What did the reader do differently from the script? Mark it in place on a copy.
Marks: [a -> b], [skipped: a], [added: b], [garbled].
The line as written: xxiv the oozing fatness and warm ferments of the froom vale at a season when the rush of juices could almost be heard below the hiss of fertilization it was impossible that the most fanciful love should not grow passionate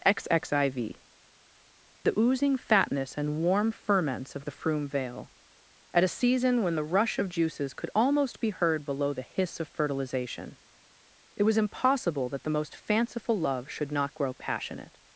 xxiv the oozing fatness and warm ferments of the froom vale at a season when the rush of juices could almost be heard below the hiss of fertilization it was impossible that the most fanciful love should not grow passionate